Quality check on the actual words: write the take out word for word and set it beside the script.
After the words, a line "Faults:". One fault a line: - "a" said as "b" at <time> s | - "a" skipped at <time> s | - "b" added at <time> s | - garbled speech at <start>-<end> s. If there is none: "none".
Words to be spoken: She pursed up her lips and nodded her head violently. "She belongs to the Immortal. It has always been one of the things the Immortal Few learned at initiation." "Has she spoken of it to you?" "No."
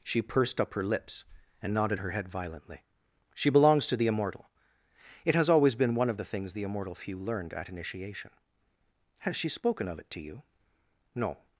She pursed up her lips and nodded her head violently. "She belongs to the Immortal. It has always been one of the things the Immortal Few learned at initiation." "Has she spoken of it to you?" "No."
Faults:
none